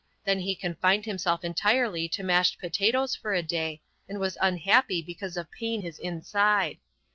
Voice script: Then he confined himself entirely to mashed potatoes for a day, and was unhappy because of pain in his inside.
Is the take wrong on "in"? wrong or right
wrong